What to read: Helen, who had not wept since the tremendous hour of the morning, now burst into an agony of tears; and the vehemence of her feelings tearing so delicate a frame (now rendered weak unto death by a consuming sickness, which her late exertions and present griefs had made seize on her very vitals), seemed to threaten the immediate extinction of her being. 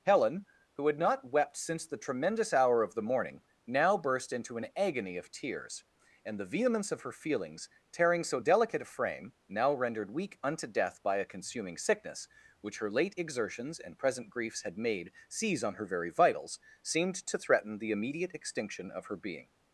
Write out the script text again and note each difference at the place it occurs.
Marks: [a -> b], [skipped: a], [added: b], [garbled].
Helen, who had not wept since the tremendous hour of the morning, now burst into an agony of tears; and the vehemence of her feelings tearing so delicate a frame (now rendered weak unto death by a consuming sickness, which her late exertions and present griefs had made seize on her very vitals), seemed to threaten the immediate extinction of her being.